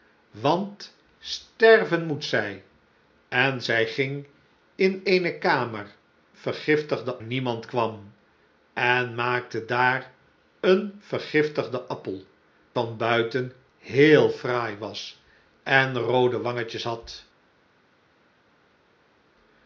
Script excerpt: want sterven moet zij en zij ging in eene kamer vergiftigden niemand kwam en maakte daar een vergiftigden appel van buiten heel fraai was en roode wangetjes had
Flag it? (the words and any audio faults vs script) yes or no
no